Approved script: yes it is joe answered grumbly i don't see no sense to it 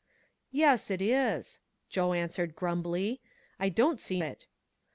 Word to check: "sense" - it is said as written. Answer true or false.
false